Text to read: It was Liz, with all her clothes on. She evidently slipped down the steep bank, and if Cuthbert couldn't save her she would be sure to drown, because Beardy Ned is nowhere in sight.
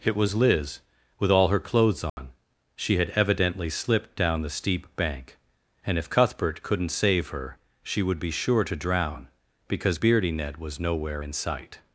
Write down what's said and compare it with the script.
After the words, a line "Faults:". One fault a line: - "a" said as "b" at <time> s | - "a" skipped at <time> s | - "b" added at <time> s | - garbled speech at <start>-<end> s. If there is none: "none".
It was Liz, with all her clothes on. She had evidently slipped down the steep bank, and if Cuthbert couldn't save her she would be sure to drown, because Beardy Ned was nowhere in sight.
Faults:
- "had" added at 3.0 s
- "is" said as "was" at 10.6 s